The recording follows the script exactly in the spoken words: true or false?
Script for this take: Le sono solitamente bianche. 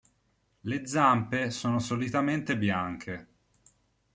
false